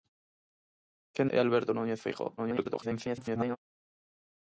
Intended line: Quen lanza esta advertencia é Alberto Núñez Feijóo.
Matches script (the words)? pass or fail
fail